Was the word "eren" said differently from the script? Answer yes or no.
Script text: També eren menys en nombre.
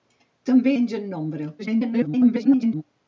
yes